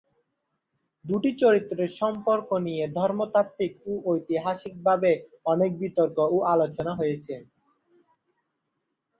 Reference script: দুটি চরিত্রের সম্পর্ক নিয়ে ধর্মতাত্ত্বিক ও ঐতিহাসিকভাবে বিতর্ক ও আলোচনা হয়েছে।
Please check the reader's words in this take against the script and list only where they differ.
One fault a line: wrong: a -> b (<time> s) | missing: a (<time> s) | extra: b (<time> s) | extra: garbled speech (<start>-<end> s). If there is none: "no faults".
extra: অনেক (5.5 s)